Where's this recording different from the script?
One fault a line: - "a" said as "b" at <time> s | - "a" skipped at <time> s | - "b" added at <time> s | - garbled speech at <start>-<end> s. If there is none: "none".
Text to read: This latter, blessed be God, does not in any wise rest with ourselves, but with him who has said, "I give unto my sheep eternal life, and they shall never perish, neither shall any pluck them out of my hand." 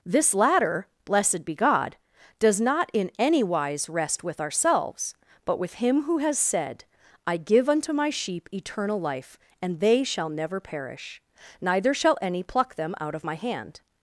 none